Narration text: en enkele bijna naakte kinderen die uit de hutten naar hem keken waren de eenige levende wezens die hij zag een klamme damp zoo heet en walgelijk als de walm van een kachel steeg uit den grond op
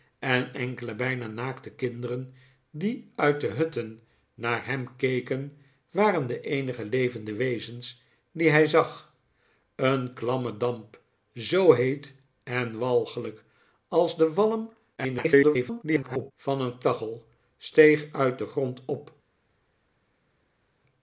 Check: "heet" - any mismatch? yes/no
no